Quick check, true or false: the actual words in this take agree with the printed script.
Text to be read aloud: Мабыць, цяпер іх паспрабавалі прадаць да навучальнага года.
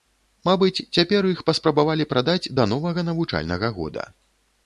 false